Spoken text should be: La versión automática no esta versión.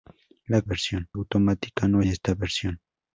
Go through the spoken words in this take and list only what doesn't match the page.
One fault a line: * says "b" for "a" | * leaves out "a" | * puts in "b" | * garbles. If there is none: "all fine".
all fine